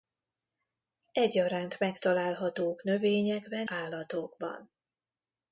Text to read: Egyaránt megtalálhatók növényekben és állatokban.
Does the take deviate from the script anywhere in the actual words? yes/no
yes